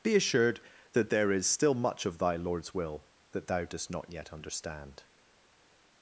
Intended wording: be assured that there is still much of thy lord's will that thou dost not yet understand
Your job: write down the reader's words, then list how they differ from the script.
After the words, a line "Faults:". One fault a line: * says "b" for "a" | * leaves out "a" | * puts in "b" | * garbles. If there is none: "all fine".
be assured that there is still much of thy lord's will that thou dost not yet understand
Faults:
all fine